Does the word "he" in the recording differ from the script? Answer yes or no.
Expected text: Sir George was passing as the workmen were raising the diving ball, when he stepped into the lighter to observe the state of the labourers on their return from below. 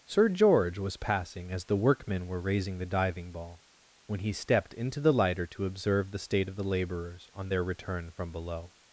no